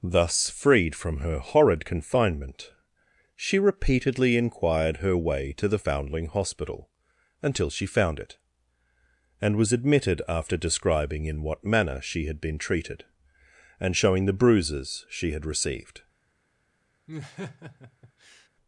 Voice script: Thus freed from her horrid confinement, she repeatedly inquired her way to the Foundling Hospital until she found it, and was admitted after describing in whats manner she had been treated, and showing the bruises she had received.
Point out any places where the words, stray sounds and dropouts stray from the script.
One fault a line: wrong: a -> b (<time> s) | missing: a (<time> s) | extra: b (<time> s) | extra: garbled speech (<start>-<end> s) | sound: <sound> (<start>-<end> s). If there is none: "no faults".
wrong: whats -> what (11.4 s)
sound: laugh (17.1-18.5 s)